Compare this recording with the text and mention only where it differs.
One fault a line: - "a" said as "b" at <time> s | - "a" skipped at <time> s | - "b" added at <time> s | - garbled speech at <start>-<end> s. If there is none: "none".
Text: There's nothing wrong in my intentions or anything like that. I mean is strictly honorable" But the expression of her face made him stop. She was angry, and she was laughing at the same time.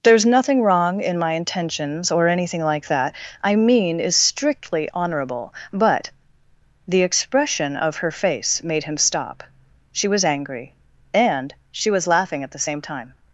none